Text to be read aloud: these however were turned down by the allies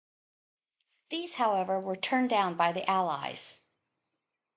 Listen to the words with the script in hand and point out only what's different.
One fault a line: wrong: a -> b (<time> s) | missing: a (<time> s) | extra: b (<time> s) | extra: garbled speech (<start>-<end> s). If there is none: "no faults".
no faults